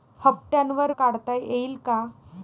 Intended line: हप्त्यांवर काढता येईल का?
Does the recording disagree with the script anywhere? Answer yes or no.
no